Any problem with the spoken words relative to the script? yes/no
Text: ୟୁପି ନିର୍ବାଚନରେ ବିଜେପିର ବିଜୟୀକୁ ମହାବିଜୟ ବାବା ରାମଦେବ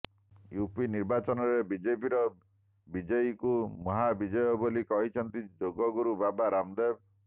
yes